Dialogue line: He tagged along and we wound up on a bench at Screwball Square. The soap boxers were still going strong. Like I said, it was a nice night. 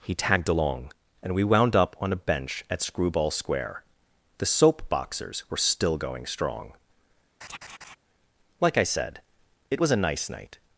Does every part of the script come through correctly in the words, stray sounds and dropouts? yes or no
no